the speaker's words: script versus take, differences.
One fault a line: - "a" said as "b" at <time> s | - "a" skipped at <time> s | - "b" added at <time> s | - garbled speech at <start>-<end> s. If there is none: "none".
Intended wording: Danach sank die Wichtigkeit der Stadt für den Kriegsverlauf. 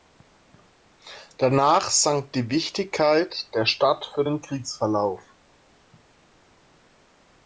none